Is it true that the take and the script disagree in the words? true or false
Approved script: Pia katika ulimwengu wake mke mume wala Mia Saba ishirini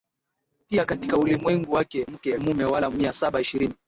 false